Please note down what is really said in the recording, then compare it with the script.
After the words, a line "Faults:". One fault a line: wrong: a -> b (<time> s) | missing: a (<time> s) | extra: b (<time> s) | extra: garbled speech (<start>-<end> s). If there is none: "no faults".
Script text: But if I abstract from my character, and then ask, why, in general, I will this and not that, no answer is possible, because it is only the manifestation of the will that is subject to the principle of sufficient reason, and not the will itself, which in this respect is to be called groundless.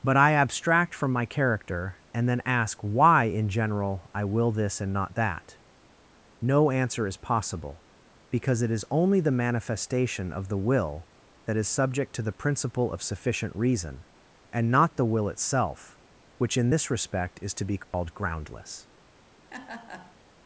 But I abstract from my character, and then ask, why, in general, I will this and not that, no answer is possible, because it is only the manifestation of the will that is subject to the principle of sufficient reason, and not the will itself, which in this respect is to be called groundless.
Faults:
missing: if (0.2 s)